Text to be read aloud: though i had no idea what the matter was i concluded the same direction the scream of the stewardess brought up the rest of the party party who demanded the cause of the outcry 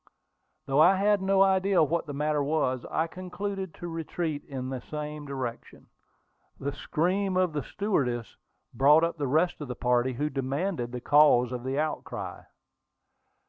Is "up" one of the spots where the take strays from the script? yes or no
no